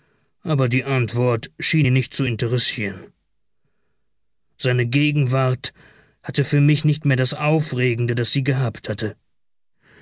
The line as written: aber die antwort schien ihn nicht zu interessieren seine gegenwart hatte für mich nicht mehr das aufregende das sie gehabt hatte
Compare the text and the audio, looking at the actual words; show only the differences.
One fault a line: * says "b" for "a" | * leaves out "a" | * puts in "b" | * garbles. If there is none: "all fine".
all fine